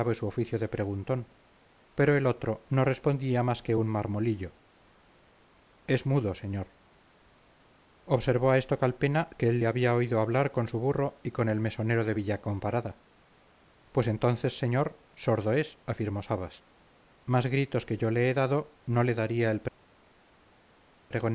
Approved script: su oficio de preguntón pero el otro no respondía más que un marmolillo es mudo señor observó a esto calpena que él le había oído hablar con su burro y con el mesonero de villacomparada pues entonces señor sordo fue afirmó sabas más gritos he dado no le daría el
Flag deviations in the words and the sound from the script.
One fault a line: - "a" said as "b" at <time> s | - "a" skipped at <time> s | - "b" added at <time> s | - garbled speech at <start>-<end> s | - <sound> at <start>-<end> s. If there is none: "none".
- "fue" said as "es" at 15.5 s
- "que yo le" added at 17.8 s